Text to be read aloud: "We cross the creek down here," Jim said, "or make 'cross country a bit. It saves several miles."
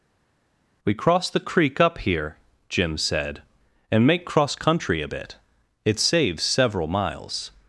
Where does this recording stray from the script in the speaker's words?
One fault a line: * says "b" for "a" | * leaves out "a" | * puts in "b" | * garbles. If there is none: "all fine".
* says "up" for "down"
* says "and" for "or"